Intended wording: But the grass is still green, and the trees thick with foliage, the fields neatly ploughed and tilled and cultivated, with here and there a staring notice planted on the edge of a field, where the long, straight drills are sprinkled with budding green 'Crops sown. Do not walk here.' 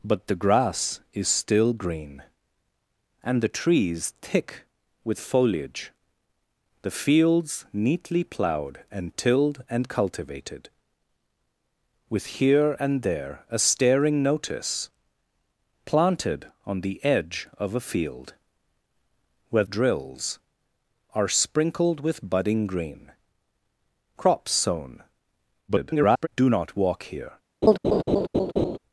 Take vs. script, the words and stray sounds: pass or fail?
fail